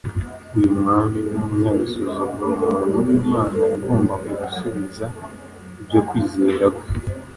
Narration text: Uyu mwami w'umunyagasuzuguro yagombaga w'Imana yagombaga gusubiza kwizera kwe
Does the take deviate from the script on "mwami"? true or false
false